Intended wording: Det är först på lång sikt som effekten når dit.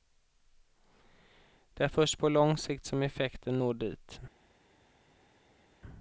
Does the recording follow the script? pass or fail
pass